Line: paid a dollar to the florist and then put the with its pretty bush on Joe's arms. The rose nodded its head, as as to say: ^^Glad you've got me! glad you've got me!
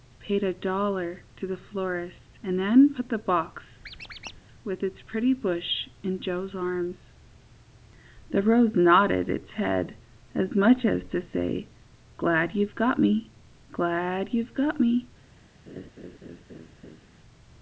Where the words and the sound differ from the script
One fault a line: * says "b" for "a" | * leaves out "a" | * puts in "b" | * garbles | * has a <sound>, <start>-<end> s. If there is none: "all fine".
* puts in "box"
* has a squeak, 3.8-4.4 s
* says "in" for "on"
* puts in "much"
* has a laugh, 15.7-17.1 s